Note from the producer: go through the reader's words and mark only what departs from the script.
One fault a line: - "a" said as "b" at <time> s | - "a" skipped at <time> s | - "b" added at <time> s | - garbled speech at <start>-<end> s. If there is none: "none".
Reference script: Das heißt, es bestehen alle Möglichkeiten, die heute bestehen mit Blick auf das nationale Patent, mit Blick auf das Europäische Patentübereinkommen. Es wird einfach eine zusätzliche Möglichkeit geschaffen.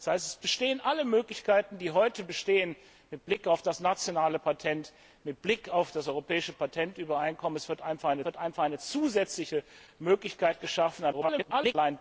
- "wird einfach eine" added at 8.3 s
- garbled speech at 11.1-11.7 s